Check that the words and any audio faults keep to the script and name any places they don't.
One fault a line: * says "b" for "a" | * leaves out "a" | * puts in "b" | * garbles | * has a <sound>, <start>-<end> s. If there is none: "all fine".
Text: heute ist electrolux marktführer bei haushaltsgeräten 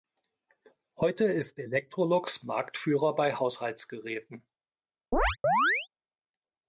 * has a chirp, 5.1-5.9 s